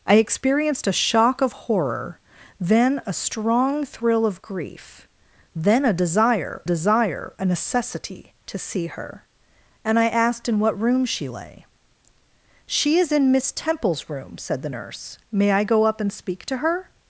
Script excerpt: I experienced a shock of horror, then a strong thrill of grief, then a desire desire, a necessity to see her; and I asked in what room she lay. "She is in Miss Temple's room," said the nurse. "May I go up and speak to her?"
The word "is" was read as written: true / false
true